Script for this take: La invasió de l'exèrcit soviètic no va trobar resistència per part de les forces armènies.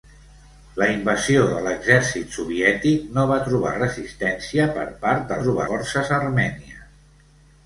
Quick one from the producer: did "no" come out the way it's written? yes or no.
yes